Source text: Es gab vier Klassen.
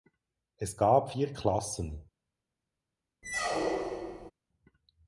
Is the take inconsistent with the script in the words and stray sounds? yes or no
yes